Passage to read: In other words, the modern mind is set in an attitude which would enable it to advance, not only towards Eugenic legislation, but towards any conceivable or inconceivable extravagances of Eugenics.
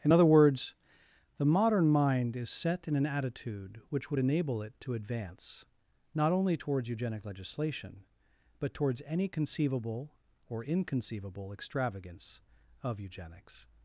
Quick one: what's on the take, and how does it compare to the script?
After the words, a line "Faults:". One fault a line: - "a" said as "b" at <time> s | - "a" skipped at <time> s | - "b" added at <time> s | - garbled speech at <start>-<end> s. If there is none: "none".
In other words, the modern mind is set in an attitude which would enable it to advance, not only towards Eugenic legislation, but towards any conceivable or inconceivable extravagance of Eugenics.
Faults:
- "extravagances" said as "extravagance" at 11.5 s